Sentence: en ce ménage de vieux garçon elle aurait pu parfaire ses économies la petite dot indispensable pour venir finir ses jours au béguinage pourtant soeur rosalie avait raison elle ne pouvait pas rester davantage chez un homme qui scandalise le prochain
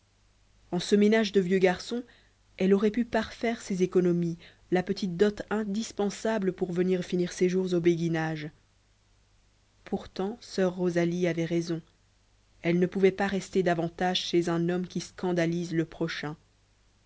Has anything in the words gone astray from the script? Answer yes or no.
no